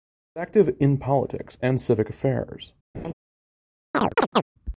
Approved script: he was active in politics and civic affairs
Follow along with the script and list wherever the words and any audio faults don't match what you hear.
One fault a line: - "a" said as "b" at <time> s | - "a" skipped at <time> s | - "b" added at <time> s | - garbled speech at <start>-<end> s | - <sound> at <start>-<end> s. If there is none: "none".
- laugh at 2.9-3.1 s
- chirp at 3.9-4.4 s